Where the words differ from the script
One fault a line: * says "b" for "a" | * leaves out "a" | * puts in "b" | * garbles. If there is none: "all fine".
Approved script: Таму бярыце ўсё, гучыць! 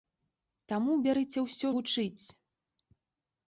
all fine